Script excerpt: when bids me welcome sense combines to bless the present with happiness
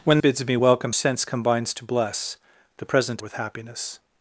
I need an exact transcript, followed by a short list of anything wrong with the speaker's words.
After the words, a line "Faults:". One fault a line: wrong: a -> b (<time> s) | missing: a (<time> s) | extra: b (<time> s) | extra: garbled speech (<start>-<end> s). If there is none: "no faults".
when bids me welcome sense combines to bless the present with happiness
Faults:
no faults